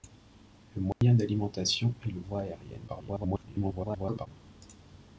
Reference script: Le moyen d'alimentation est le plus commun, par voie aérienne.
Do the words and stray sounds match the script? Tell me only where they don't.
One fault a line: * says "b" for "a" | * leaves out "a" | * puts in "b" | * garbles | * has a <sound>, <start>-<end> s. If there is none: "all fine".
* has a dropout, 0.9-1.0 s
* leaves out "plus commun par"
* garbles